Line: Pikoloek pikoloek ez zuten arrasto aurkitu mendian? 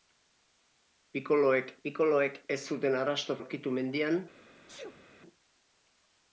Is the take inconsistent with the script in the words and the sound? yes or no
yes